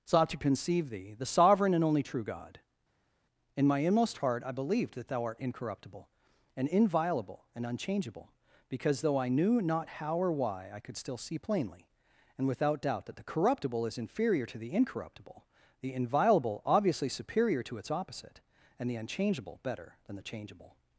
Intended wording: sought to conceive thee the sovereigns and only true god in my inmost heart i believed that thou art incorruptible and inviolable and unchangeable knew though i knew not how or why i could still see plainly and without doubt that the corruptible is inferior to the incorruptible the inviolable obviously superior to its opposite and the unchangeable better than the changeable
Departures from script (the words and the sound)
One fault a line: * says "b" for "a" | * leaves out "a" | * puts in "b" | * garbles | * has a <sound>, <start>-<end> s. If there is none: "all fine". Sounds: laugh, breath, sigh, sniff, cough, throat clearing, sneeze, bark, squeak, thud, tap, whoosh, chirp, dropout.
* says "sovereign" for "sovereigns"
* says "because" for "knew"